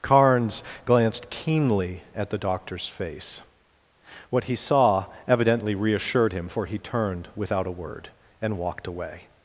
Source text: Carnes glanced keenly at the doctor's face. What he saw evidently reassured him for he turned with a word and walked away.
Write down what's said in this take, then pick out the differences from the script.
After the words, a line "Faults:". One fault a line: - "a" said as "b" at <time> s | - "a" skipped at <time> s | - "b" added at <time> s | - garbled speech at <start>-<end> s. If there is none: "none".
Carnes glanced keenly at the doctor's face. What he saw evidently reassured him for he turned without a word and walked away.
Faults:
- "with" said as "without" at 7.4 s